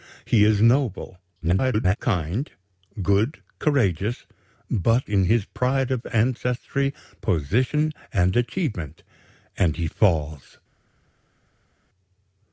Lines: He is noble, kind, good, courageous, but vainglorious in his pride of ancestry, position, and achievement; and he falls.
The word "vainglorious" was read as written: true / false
false